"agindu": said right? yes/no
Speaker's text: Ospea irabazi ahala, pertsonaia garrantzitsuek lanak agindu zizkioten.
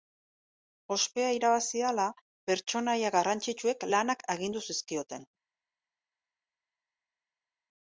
yes